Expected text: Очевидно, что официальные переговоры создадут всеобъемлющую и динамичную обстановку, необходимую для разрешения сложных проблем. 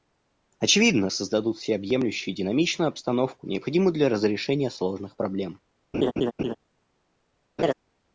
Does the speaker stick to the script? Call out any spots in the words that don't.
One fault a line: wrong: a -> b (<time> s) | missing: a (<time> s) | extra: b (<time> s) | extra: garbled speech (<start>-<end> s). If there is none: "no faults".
missing: что официальные переговоры (1.1 s)